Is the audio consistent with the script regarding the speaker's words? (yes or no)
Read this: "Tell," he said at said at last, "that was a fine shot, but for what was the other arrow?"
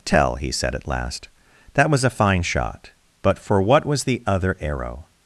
no